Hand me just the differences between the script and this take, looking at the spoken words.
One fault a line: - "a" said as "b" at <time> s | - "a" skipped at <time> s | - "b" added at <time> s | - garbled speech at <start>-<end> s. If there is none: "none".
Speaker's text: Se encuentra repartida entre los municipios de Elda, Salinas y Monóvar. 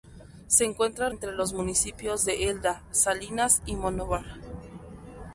- "repartida" skipped at 1.1 s